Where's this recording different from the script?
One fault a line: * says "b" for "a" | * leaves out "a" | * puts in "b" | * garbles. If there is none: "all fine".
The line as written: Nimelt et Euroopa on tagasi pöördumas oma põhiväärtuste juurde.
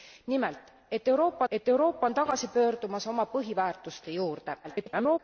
* puts in "et Euroopa"
* garbles